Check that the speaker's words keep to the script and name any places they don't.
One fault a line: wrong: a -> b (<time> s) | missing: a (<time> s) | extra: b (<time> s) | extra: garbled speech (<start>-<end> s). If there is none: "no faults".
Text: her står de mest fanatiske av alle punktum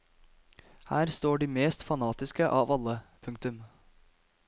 no faults